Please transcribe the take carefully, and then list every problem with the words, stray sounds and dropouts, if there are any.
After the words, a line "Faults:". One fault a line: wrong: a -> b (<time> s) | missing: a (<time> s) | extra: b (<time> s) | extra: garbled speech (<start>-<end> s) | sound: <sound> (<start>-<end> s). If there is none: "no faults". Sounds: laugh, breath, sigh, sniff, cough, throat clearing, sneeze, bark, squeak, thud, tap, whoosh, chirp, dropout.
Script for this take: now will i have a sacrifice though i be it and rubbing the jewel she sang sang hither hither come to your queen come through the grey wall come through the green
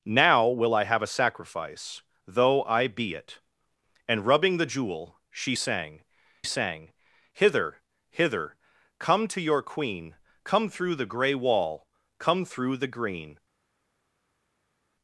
now will i have a sacrifice though i be it and rubbing the jewel she sang sang hither hither come to your queen come through the grey wall come through the green
Faults:
no faults